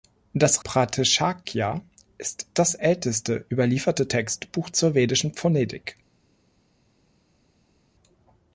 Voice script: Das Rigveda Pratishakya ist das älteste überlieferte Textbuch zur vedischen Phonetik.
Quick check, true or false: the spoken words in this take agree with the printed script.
false